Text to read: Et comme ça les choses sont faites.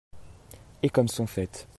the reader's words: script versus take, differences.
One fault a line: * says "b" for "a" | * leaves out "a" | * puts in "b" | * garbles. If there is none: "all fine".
* leaves out "ça les choses"